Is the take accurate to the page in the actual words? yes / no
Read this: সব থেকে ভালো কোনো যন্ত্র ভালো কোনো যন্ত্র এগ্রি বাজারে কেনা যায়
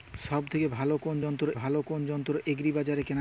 yes